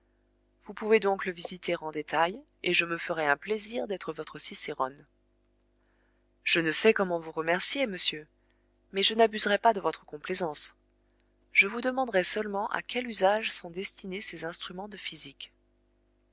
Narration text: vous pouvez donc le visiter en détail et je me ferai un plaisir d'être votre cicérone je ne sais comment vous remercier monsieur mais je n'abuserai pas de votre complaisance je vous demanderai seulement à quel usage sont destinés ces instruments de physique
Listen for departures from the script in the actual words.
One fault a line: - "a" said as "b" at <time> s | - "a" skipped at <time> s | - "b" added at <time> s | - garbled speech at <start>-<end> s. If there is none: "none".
none